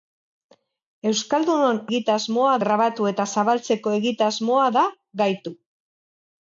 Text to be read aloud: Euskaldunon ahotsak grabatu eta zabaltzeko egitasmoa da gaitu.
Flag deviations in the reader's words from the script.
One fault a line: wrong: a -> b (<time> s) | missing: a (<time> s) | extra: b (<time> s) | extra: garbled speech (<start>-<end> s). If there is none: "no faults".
wrong: ahotsak -> egitasmoa (1.9 s)